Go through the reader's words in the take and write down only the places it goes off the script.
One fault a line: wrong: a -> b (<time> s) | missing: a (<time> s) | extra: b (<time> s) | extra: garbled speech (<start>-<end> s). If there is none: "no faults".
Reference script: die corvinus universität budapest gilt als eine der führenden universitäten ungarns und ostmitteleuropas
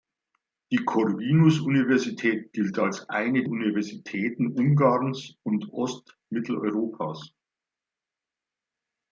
missing: budapest (2.5 s)
missing: der führenden (3.4 s)